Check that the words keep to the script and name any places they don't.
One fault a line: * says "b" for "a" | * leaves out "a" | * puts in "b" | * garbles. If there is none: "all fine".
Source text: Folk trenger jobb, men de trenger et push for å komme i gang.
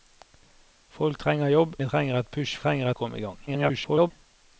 * leaves out "men"
* says "trenger" for "for"
* garbles